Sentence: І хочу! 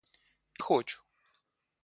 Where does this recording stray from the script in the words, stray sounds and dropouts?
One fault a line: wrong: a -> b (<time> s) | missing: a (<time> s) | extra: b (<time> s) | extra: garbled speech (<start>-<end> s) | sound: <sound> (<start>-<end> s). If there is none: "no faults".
no faults